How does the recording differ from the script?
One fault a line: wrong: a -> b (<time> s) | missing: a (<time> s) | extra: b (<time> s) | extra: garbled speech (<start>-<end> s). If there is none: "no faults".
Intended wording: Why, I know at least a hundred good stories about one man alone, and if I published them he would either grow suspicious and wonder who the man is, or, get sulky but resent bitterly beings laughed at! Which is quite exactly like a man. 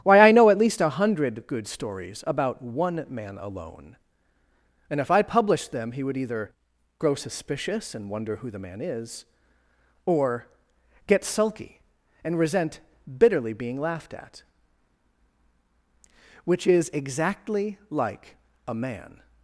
wrong: but -> and (12.2 s)
wrong: beings -> being (13.5 s)
missing: quite (16.9 s)